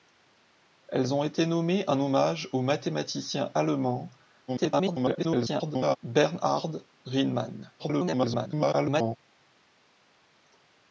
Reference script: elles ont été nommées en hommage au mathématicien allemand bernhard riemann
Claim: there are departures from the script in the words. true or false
true